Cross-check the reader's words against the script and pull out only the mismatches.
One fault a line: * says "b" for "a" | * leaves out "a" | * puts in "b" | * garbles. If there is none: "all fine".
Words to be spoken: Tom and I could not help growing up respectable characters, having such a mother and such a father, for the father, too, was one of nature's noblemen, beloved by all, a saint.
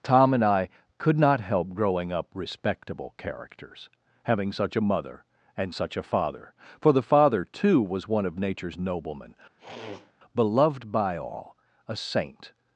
all fine